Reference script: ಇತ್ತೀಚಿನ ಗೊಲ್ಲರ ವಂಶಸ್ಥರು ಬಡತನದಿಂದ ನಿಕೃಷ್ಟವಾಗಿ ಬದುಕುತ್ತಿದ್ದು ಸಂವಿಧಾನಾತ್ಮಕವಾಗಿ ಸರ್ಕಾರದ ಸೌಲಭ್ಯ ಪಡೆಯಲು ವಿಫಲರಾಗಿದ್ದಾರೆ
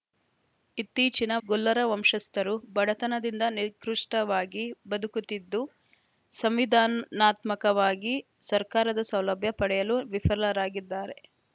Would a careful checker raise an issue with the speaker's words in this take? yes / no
no